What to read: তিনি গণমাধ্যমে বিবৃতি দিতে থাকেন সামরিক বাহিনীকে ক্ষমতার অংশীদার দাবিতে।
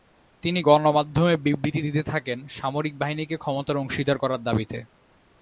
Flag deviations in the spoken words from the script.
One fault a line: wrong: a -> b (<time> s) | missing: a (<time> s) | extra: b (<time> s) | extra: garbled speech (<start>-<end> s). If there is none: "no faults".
extra: করার (4.1 s)